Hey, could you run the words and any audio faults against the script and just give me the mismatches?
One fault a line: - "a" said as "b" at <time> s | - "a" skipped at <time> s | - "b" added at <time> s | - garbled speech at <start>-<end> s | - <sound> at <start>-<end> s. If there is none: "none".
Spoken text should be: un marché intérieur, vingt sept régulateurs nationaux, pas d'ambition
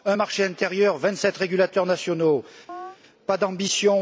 - chirp at 2.7-3.0 s